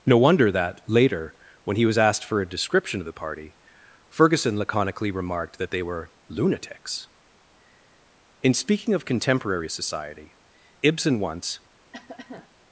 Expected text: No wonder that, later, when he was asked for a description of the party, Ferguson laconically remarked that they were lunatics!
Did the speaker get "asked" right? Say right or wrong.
right